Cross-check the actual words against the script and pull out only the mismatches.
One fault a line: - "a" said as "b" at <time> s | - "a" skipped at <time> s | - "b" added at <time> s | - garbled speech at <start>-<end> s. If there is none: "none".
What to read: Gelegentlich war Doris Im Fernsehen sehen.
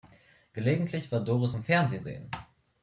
none